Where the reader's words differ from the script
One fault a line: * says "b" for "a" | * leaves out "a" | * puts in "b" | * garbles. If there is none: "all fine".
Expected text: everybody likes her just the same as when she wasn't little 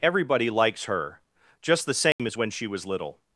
* says "was" for "wasn't"